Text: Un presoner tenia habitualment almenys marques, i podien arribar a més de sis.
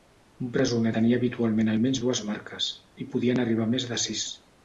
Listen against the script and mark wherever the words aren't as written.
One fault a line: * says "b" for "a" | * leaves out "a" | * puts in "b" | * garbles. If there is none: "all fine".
* puts in "dues"